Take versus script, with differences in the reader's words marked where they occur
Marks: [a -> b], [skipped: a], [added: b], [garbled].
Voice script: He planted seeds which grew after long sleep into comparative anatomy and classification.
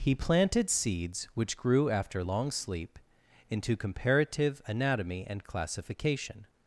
He planted seeds which grew after long sleep into comparative anatomy and classification.